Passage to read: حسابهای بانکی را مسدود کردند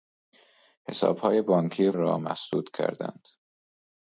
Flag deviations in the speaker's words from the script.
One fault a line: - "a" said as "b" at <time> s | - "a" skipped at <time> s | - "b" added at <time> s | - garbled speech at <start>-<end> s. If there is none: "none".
none